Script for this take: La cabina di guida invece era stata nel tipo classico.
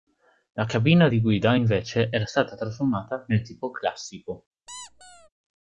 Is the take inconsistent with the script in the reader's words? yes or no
yes